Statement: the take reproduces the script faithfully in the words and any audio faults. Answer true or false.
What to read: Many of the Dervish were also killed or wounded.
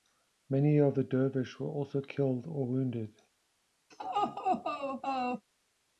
false